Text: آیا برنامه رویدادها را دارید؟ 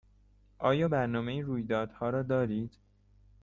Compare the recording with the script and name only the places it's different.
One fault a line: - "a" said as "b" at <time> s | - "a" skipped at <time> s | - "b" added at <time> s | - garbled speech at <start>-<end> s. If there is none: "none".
none